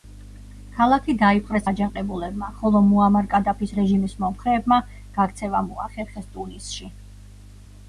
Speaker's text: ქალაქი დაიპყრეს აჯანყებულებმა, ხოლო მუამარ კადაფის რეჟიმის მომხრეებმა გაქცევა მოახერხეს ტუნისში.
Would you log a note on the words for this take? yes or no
no